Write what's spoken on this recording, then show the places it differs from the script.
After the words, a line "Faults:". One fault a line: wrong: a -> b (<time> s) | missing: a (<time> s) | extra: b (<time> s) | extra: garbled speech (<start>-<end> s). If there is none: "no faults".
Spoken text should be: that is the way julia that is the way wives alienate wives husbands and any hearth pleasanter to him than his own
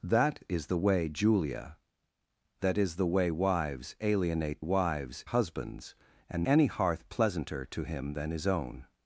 that is the way julia that is the way wives alienate wives husbands and any hearth pleasanter to him than his own
Faults:
no faults